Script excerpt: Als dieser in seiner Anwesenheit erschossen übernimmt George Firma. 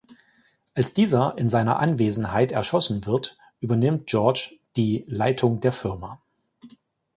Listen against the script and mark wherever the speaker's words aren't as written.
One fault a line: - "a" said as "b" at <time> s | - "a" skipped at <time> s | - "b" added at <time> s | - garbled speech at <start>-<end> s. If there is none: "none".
- "wird" added at 3.1 s
- "die Leitung der" added at 4.8 s